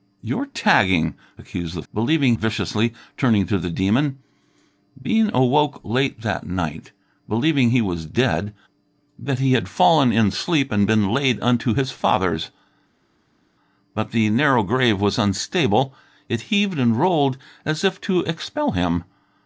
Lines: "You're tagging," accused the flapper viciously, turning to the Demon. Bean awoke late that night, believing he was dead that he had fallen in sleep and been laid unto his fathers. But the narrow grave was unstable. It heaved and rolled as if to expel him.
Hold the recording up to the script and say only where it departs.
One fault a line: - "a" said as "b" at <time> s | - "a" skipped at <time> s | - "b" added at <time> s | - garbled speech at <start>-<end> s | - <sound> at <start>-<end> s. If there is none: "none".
- "flapper" said as "believing" at 1.9 s